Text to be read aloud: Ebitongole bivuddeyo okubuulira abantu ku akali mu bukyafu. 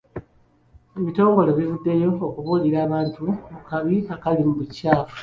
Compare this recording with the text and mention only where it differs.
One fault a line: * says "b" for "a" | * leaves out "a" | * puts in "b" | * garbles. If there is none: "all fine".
* puts in "kabi"